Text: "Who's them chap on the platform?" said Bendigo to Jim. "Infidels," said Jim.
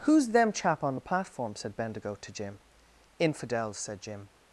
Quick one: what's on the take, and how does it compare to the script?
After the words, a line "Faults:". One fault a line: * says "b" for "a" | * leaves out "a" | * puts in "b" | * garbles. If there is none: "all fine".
"Who's them chap on the platform?" said Bendigo to Jim. "Infidels," said Jim.
Faults:
all fine